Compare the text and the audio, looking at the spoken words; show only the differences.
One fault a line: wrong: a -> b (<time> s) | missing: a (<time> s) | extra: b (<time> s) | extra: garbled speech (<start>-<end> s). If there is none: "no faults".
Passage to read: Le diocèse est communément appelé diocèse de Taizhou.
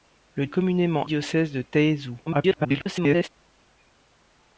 missing: diocèse (0.5 s)
missing: appelé (1.1 s)
extra: garbled speech (2.3-3.3 s)